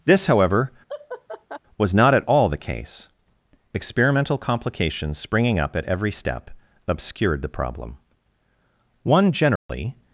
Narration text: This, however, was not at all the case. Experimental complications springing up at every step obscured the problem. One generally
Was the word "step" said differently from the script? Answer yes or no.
no